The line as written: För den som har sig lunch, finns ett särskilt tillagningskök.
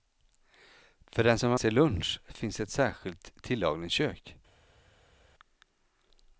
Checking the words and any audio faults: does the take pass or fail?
pass